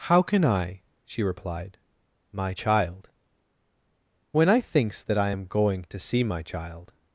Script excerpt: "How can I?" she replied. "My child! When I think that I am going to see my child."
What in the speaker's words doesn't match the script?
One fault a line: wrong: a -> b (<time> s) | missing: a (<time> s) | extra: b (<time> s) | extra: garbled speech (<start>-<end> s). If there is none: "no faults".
wrong: think -> thinks (4.6 s)